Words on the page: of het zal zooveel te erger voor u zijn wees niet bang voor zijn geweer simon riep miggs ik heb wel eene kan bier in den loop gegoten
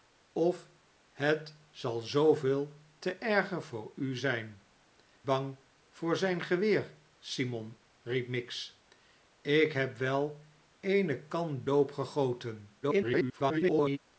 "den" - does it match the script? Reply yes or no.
no